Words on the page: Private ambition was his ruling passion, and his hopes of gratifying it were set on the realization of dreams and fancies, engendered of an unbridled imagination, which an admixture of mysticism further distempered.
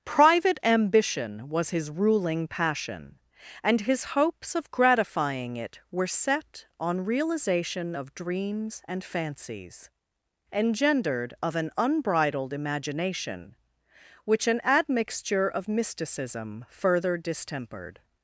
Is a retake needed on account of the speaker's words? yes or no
yes